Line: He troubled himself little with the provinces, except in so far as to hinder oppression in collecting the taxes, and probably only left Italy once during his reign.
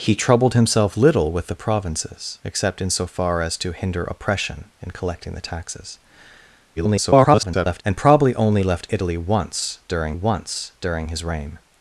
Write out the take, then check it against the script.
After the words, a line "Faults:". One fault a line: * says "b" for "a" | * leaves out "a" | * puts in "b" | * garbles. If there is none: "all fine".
He troubled himself little with the provinces, except in so far as to hinder oppression in collecting the taxes, [garbled] and probably only left Italy once during once during his reign.
Faults:
* garbles
* puts in "once during"